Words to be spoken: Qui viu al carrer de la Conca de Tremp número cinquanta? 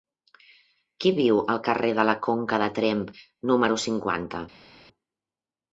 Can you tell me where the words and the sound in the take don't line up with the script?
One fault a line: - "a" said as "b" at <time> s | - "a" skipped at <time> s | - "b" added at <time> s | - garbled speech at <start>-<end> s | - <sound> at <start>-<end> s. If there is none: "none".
none